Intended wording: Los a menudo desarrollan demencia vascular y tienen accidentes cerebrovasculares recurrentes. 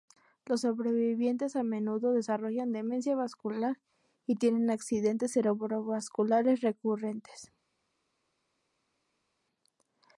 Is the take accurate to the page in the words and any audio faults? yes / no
no